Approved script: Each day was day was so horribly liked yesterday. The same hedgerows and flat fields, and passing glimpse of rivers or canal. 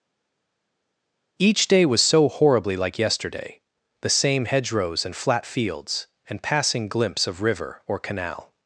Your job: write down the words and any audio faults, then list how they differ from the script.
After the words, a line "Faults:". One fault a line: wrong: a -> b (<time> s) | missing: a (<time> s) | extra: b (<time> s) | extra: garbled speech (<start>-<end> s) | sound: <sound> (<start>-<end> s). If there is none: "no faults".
Each day was so horribly like yesterday. The same hedgerows and flat fields, and passing glimpse of river or canal.
Faults:
missing: day was (2.0 s)
wrong: liked -> like (2.8 s)
wrong: rivers -> river (7.4 s)